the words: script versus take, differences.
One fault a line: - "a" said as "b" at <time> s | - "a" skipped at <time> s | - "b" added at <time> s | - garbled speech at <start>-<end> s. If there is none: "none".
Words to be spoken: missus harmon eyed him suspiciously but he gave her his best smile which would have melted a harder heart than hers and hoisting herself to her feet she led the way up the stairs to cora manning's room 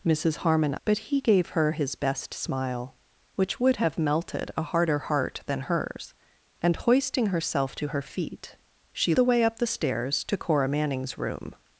- "eyed him suspiciously" skipped at 0.8 s
- "led" skipped at 9.1 s